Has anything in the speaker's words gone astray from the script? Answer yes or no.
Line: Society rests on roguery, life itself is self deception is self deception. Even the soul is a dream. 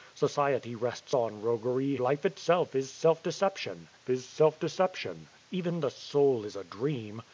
no